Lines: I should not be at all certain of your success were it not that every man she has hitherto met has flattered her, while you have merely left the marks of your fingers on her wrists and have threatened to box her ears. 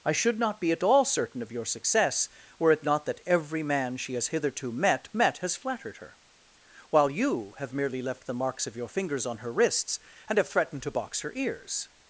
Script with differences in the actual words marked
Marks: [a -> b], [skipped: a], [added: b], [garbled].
I should not be at all certain of your success were it not that every man she has hitherto met [added: met] has flattered her, while you have merely left the marks of your fingers on her wrists and have threatened to box her ears.